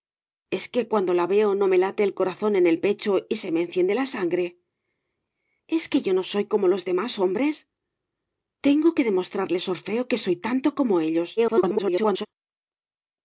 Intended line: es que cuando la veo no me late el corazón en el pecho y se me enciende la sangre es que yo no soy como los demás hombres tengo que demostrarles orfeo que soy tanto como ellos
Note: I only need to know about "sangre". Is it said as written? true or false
true